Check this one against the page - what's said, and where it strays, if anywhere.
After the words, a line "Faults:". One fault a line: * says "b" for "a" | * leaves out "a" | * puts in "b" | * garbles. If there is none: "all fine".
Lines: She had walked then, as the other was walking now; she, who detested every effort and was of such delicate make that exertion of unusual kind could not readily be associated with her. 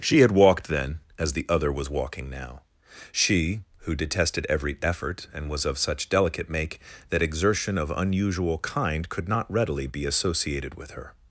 She had walked then, as the other was walking now; she, who detested every effort and was of such delicate make that exertion of unusual kind could not readily be associated with her.
Faults:
all fine